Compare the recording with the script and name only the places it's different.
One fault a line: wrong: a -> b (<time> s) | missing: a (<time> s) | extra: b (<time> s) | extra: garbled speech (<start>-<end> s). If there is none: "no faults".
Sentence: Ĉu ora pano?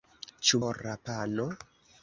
no faults